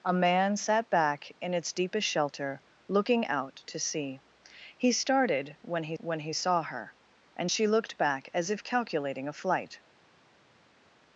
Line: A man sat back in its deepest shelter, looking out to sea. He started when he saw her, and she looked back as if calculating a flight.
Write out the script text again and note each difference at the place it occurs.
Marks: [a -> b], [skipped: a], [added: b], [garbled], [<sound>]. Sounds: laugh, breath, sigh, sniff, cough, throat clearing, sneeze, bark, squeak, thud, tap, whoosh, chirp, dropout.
A man sat back in its deepest shelter, looking out to sea. He started when he [added: when he] saw her, and she looked back as if calculating a flight.